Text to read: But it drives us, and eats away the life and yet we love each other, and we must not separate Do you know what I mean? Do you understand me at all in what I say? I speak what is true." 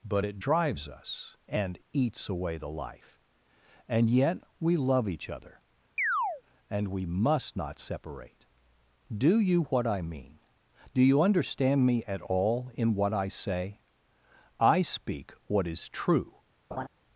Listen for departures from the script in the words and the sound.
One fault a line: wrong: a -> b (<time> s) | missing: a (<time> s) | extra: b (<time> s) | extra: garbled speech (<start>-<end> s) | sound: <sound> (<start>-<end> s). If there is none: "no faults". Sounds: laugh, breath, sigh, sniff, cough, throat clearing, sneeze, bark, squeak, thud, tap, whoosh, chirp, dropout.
sound: chirp (6.0-6.4 s)
missing: know (9.6 s)
sound: laugh (16.7-16.9 s)